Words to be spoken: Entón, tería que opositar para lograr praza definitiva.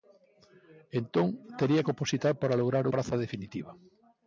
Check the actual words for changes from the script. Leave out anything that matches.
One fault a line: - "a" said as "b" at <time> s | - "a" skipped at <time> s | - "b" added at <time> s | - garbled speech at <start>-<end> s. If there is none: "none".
none